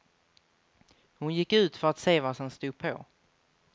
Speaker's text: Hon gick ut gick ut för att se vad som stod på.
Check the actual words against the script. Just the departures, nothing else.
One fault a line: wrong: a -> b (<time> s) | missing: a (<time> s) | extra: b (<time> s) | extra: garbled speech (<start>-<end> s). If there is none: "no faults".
missing: gick ut (1.8 s)